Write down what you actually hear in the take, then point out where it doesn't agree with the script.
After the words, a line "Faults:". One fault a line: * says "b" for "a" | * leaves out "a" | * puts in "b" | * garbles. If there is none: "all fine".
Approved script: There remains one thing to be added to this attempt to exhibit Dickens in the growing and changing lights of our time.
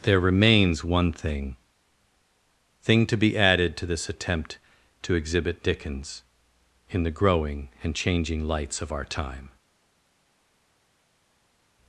There remains one thing thing to be added to this attempt to exhibit Dickens in the growing and changing lights of our time.
Faults:
* puts in "thing"